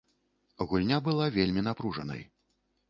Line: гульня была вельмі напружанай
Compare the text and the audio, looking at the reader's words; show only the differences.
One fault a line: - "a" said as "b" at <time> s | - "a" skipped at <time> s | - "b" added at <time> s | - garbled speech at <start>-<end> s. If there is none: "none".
none